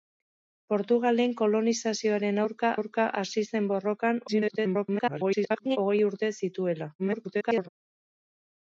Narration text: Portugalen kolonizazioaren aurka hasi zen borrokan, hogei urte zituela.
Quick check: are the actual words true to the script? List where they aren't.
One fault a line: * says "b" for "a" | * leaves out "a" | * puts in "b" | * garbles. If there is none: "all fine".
* puts in "aurka"
* garbles
* garbles